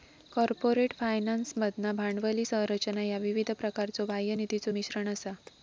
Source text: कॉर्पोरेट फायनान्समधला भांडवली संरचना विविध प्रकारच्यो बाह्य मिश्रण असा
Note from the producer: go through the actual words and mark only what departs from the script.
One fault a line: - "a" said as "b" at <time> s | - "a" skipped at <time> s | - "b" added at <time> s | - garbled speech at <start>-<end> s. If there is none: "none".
- "ह्या" added at 3.0 s
- "निधीचो" added at 4.4 s